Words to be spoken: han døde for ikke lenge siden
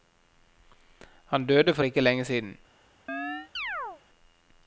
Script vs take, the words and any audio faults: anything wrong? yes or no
yes